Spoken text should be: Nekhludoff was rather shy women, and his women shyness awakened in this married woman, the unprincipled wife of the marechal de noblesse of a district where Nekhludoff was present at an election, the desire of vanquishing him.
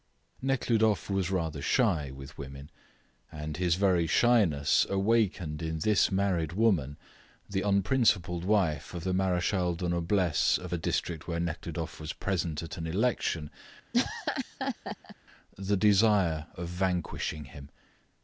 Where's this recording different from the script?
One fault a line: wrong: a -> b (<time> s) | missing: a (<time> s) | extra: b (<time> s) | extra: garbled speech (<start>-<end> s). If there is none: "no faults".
extra: with (2.1 s)
wrong: women -> very (3.8 s)